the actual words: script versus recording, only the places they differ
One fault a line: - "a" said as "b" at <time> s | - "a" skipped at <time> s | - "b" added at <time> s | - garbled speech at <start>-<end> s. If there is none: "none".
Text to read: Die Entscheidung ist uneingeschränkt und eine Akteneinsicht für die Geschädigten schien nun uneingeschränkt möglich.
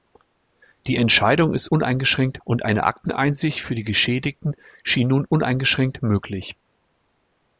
none